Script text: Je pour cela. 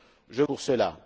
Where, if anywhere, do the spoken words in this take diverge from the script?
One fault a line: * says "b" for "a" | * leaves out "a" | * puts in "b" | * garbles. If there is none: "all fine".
all fine